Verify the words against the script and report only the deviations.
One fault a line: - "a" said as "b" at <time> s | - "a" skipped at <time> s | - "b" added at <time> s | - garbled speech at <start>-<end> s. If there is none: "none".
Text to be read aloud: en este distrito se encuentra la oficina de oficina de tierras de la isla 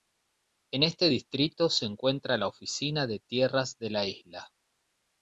- "oficina de" skipped at 3.2 s